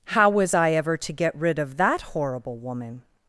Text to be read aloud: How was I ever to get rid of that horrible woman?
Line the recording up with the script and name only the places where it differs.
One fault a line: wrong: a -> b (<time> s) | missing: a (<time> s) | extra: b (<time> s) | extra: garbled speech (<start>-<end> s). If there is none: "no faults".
no faults